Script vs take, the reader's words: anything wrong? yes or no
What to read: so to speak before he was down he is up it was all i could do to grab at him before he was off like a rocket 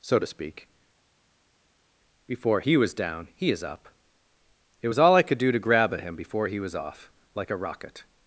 no